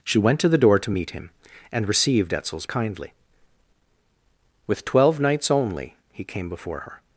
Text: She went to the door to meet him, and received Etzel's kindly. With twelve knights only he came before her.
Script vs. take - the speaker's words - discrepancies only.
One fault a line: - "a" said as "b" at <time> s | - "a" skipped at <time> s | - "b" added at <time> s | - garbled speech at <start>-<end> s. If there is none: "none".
none